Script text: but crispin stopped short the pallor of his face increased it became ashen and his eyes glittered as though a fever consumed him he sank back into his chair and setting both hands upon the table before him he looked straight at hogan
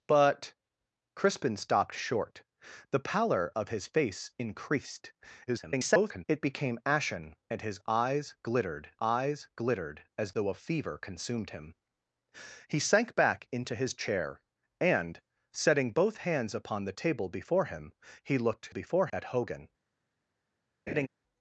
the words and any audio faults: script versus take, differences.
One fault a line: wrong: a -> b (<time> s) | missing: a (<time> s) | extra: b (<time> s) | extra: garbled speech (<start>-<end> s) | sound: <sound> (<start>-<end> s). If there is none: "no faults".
extra: garbled speech (5.5-6.2 s)
extra: eyes glittered (9.0 s)
wrong: straight -> before (18.7 s)
sound: laugh (20.9-21.1 s)